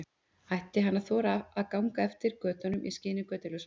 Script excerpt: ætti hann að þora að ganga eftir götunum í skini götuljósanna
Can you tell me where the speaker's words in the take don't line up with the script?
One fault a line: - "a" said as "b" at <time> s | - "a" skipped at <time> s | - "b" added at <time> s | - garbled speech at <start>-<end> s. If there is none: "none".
none